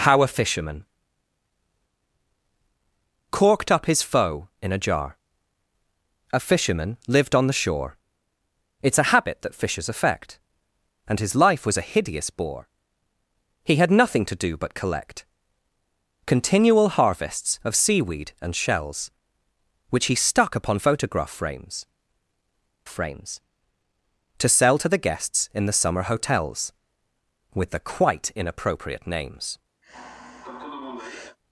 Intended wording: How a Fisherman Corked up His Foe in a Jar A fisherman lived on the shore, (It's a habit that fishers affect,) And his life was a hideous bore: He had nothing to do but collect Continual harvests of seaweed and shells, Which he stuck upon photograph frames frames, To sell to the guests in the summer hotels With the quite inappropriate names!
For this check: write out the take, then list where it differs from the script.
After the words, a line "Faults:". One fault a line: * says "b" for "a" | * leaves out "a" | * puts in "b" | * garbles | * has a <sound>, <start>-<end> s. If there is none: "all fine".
How a Fisherman Corked up His Foe in a Jar A fisherman lived on the shore, (It's a habit that fishers affect,) And his life was a hideous bore: He had nothing to do but collect Continual harvests of seaweed and shells, Which he stuck upon photograph frames frames, To sell to the guests in the summer hotels With the quite inappropriate names!
Faults:
* has a sigh, 29.8-31.4 s